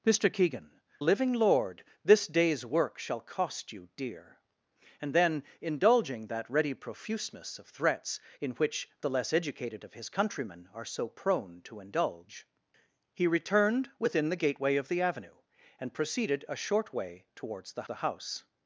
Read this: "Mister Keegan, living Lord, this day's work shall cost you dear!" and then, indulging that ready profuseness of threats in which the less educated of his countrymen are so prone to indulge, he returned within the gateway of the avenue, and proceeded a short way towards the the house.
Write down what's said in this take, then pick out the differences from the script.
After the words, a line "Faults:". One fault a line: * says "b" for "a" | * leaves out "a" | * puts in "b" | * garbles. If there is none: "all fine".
"Mister Keegan, living Lord, this day's work shall cost you dear!" and then, indulging that ready profuseness of threats in which the less educated of his countrymen are so prone to indulge, he returned within the gateway of the avenue, and proceeded a short way towards the the house.
Faults:
all fine